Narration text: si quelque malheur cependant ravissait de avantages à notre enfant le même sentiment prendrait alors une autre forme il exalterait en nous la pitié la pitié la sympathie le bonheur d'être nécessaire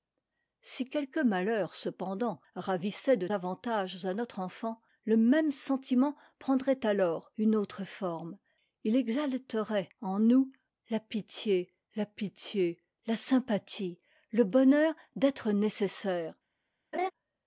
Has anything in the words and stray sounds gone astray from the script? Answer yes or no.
yes